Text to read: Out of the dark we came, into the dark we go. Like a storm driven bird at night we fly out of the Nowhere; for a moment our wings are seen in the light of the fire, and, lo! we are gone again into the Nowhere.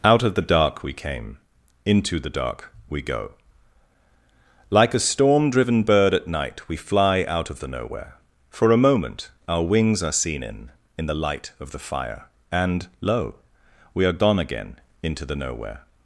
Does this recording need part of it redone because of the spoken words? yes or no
yes